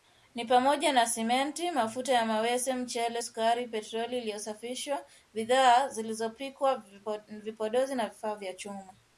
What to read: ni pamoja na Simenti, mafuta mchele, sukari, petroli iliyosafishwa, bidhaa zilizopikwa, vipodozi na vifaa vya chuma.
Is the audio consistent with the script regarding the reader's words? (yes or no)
no